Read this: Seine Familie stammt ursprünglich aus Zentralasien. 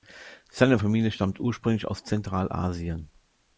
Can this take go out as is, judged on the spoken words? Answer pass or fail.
pass